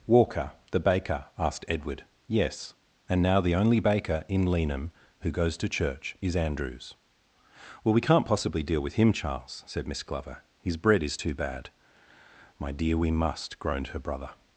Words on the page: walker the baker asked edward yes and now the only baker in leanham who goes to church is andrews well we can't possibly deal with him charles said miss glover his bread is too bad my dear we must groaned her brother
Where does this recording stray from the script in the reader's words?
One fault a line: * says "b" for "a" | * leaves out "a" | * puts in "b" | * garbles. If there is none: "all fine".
all fine